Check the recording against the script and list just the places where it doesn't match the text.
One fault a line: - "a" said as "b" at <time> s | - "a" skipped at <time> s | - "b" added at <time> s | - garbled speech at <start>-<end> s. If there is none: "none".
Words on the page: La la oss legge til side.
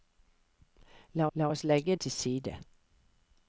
none